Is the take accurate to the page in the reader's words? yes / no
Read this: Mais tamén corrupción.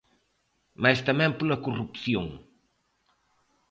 no